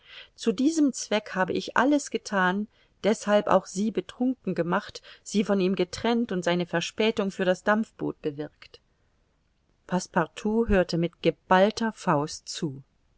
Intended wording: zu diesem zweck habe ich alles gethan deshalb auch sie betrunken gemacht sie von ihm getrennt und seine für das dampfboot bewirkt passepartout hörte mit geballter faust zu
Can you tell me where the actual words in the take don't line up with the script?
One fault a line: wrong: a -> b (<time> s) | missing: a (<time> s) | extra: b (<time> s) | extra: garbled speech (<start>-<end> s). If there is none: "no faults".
extra: verspätung (6.7 s)